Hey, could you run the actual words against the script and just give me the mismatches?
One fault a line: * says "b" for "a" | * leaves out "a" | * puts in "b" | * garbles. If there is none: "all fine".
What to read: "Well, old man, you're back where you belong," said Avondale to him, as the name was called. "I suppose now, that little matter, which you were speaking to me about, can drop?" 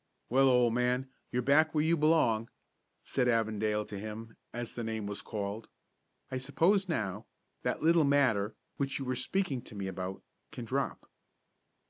all fine